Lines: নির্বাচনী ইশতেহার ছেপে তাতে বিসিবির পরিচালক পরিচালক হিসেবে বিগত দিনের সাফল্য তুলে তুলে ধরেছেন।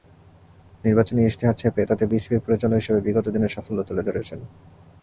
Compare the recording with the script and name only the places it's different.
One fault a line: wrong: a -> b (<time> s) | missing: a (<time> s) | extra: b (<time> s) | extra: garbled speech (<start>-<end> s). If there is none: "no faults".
missing: পরিচালক (2.8 s)
missing: তুলে (4.0 s)